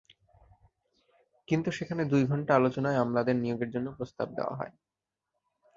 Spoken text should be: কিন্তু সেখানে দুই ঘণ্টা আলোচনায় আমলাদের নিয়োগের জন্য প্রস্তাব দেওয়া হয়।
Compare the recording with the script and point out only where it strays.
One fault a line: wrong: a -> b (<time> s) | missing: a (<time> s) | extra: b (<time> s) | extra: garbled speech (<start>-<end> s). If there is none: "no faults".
no faults